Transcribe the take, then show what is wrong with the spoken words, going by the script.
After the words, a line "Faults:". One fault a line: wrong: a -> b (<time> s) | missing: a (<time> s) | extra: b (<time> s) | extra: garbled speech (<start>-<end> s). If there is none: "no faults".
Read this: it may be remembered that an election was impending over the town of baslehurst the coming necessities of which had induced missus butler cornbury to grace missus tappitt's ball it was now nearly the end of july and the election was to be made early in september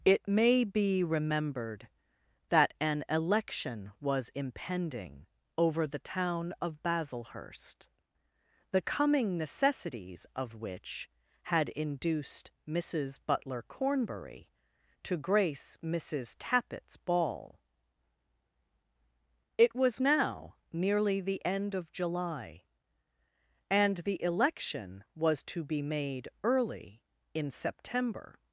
it may be remembered that an election was impending over the town of baslehurst the coming necessities of which had induced missus butler cornbury to grace missus tappitt's ball it was now nearly the end of july and the election was to be made early in september
Faults:
no faults